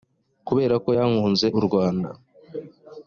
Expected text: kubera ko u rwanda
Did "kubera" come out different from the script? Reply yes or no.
no